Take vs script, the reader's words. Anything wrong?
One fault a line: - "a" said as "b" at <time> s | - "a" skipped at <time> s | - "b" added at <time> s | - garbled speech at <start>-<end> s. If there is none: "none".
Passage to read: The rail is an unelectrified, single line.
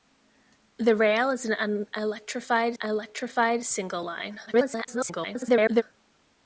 - "unelectrified" added at 2.7 s
- garbled speech at 4.5-5.8 s